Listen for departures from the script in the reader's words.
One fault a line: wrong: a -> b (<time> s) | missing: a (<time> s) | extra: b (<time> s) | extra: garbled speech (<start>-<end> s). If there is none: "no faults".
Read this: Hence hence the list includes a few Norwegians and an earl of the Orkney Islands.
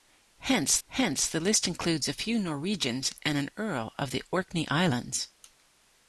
no faults